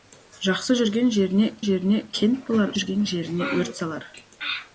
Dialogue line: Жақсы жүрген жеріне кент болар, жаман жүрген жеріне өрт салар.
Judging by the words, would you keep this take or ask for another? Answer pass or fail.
fail